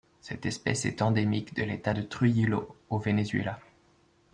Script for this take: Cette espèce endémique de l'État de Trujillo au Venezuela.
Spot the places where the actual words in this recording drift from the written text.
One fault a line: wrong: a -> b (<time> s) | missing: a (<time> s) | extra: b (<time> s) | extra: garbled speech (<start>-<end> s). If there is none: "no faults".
extra: est (0.8 s)